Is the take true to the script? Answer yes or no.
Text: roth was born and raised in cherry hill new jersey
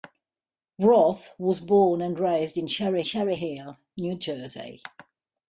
no